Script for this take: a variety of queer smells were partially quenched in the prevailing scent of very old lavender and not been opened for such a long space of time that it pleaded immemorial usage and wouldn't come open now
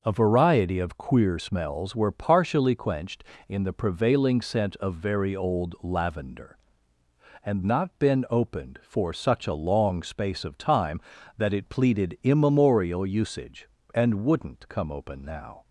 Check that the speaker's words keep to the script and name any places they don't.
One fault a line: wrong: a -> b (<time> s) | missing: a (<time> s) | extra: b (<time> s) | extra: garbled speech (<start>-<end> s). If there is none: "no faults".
no faults